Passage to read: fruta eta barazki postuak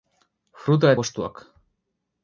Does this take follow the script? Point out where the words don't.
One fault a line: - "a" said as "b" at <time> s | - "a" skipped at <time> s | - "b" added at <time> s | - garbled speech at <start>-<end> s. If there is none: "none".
- "eta barazki" skipped at 0.9 s